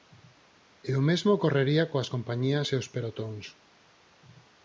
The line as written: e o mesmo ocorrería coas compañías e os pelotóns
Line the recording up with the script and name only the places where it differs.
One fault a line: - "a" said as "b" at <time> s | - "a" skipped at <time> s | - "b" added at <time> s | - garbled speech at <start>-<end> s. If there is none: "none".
none